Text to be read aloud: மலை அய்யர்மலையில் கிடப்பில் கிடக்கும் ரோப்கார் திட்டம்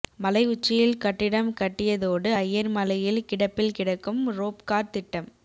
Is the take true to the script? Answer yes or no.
no